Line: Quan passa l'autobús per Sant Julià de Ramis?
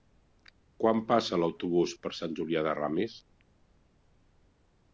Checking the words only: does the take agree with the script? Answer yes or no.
yes